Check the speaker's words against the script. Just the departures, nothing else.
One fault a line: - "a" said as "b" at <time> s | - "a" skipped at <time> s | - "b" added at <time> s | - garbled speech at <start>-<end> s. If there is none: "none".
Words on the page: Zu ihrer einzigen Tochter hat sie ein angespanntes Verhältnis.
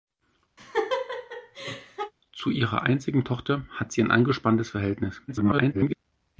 - garbled speech at 5.3-6.0 s